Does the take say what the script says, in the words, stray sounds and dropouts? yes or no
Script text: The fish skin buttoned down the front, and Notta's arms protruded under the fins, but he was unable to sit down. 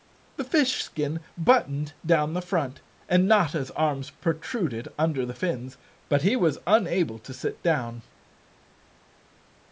yes